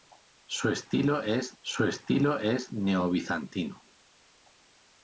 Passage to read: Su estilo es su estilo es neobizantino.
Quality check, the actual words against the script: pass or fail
pass